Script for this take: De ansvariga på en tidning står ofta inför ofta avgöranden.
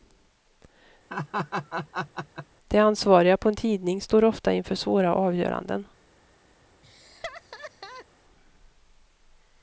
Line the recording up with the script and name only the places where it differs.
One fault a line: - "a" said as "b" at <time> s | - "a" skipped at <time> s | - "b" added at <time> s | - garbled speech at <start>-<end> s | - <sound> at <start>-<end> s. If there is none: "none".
- laugh at 1.1-2.5 s
- "ofta" said as "svåra" at 4.7 s
- laugh at 6.8-8.1 s